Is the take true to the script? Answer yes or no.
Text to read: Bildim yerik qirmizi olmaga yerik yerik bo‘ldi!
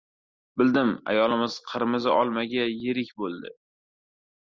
no